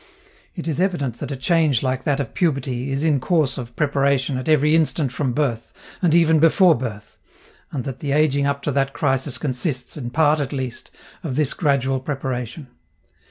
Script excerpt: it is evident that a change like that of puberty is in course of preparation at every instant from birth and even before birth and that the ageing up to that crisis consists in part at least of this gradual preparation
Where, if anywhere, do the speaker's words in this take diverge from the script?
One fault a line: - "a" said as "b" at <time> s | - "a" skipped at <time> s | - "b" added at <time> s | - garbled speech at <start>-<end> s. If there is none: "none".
none